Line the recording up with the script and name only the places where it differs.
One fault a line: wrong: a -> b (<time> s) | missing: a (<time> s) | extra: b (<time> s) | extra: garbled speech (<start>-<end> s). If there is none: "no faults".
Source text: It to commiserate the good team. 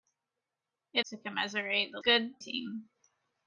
no faults